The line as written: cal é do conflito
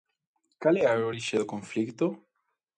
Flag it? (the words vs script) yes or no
yes